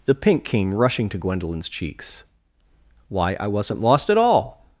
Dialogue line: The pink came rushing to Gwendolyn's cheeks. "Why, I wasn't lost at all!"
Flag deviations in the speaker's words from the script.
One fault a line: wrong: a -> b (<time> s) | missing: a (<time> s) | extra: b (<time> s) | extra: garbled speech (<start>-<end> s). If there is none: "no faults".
no faults